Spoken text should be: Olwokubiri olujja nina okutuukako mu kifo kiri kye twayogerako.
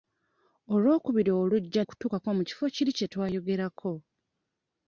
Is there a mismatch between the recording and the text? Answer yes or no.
yes